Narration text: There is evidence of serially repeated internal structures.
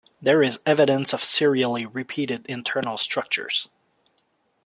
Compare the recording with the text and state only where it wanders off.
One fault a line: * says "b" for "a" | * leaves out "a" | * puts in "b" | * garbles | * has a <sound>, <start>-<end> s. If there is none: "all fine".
all fine